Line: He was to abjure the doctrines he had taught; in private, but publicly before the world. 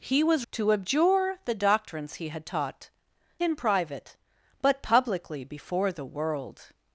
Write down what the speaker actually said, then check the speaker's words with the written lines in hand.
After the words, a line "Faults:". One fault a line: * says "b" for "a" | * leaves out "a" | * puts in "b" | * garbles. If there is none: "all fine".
He was to abjure the doctrines he had taught; in private, but publicly before the world.
Faults:
all fine